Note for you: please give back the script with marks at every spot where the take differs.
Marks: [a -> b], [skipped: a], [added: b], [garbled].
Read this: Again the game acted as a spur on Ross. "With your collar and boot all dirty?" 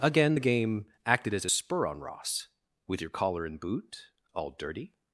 Again the game acted as a spur on Ross. "With your collar and boot all dirty?"